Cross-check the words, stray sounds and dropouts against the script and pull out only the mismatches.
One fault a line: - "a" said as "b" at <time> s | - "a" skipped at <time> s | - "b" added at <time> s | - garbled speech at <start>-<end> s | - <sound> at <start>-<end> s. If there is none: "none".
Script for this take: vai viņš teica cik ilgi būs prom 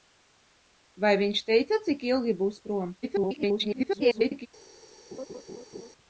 - garbled speech at 3.0-4.5 s
- laugh at 5.1-5.9 s